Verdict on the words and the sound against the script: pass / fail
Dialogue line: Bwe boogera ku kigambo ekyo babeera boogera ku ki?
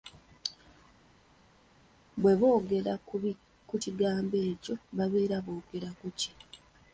pass